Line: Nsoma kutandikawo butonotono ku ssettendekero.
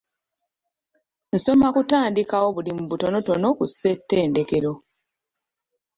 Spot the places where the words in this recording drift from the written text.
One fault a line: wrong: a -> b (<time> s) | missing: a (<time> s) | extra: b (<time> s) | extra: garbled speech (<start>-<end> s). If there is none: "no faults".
extra: bulimu (2.5 s)